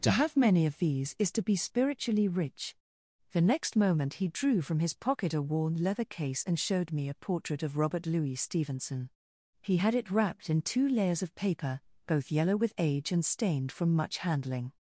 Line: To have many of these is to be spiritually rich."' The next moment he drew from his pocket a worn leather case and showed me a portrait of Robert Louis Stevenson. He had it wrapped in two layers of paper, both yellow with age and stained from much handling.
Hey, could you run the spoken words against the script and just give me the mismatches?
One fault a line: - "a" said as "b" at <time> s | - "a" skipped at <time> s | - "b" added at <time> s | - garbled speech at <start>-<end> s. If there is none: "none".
none